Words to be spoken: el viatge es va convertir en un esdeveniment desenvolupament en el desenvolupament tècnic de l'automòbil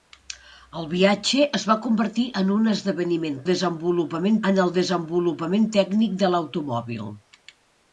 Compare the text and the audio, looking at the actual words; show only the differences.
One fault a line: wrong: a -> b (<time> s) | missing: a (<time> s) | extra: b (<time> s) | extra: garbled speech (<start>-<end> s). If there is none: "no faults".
no faults